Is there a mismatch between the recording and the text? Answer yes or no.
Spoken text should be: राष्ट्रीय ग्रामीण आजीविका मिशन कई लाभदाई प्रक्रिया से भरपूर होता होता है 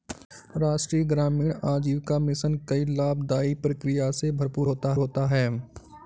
no